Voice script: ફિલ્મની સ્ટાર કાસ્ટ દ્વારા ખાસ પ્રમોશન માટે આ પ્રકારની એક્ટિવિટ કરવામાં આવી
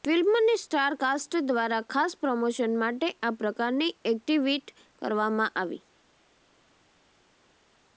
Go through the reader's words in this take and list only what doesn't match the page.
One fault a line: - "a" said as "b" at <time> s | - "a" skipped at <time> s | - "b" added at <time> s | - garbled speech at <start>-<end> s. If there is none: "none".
none